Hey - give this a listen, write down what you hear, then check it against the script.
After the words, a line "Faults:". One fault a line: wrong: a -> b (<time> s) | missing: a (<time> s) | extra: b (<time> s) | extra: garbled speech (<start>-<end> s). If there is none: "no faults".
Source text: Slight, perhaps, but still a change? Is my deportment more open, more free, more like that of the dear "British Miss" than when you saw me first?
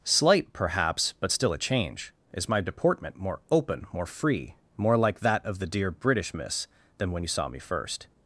Slight, perhaps, but still a change? Is my deportment more open, more free, more like that of the dear "British Miss" than when you saw me first?
Faults:
no faults